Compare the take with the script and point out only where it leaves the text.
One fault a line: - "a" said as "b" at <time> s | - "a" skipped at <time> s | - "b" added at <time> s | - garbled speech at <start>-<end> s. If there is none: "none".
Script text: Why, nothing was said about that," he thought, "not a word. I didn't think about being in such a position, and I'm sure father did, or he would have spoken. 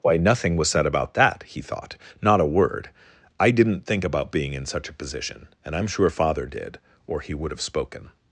none